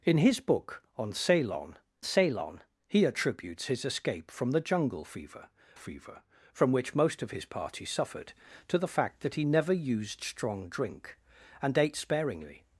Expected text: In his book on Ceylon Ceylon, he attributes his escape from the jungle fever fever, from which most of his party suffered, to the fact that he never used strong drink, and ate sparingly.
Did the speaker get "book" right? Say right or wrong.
right